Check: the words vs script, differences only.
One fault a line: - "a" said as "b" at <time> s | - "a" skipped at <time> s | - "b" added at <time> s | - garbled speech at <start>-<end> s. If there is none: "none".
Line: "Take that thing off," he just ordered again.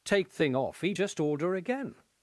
- "that" skipped at 0.3 s
- "ordered" said as "order" at 1.2 s